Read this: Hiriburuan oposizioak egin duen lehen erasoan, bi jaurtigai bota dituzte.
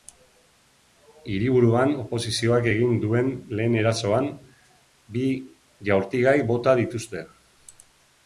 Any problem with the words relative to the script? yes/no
no